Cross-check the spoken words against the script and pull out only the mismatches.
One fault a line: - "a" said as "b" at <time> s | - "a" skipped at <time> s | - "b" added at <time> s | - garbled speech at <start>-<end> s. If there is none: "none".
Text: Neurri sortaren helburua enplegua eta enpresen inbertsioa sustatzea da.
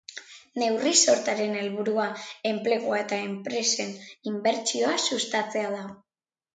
none